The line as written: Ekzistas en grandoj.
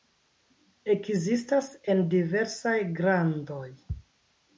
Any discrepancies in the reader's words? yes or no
yes